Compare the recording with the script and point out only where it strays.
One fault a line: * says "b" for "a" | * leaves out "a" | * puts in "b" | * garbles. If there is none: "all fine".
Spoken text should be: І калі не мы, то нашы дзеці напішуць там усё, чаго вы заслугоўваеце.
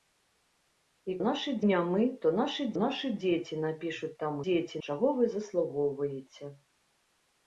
* says "нашы" for "калі"
* puts in "нашы"
* says "дзеці" for "усё"